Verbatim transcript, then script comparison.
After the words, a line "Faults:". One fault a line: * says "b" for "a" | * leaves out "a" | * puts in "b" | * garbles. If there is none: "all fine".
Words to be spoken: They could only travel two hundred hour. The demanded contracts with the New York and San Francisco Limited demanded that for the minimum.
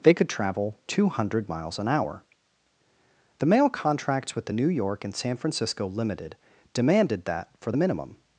They could travel two hundred miles an hour. The mail contracts with the New York and San Francisco Limited demanded that for the minimum.
Faults:
* leaves out "only"
* puts in "miles an"
* says "mail" for "demanded"